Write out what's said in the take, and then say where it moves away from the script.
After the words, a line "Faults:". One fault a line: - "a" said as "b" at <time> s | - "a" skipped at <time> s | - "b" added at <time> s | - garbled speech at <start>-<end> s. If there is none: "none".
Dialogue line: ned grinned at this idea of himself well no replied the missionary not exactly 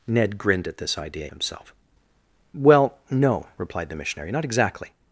ned grinned at this idea of himself well no replied the missionary not exactly
Faults:
none